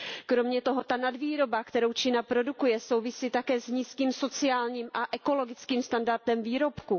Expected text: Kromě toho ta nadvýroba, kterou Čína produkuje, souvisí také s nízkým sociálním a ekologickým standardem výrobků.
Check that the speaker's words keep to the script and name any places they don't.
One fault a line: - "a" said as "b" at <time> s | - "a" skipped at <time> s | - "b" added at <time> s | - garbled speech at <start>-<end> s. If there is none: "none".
none